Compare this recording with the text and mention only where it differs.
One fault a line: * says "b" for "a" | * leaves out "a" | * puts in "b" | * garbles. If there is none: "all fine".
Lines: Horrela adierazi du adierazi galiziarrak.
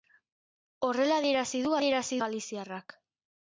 all fine